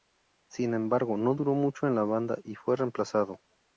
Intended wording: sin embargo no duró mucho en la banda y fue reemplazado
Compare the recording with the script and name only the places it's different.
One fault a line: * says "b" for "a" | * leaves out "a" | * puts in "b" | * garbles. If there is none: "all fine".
all fine